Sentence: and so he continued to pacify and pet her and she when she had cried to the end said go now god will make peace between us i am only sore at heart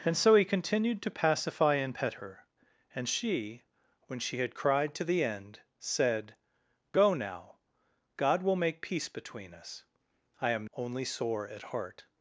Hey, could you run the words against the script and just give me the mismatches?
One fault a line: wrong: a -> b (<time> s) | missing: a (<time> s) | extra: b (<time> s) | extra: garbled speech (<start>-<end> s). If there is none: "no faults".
no faults